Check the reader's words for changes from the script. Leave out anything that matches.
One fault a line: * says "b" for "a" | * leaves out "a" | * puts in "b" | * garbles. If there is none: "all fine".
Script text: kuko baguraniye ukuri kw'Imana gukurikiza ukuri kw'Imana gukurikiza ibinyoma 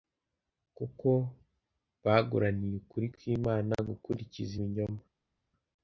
* leaves out "ukuri kw'Imana gukurikiza"